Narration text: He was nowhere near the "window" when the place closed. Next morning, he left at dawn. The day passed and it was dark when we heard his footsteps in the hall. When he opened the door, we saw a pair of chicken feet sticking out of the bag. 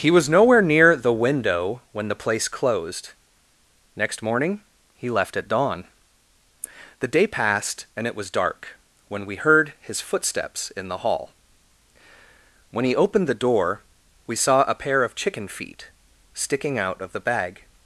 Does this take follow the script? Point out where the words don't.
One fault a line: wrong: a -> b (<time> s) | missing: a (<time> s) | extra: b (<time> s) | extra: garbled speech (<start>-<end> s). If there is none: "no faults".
no faults